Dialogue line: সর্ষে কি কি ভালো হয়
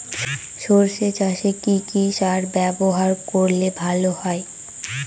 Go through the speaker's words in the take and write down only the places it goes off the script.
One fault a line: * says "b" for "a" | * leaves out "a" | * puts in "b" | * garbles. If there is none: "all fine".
* puts in "চাসে"
* puts in "সার ব্যবহার করলে"